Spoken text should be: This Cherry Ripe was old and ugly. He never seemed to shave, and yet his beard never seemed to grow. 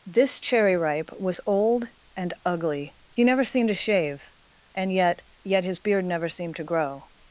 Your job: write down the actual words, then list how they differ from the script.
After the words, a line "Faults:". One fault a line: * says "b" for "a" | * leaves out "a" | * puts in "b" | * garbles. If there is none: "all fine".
This Cherry Ripe was old and ugly. He never seemed to shave, and yet yet his beard never seemed to grow.
Faults:
* puts in "yet"